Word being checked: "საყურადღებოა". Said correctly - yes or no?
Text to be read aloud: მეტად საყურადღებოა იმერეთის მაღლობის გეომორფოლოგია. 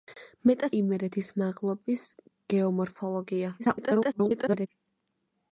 no